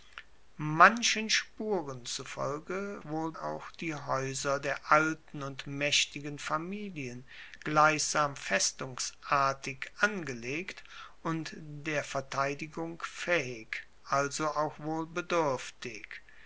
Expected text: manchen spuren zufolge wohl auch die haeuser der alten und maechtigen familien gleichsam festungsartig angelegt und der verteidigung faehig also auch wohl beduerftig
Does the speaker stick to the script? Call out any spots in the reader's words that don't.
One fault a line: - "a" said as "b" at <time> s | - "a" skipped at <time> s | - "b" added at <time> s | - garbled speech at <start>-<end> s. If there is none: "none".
none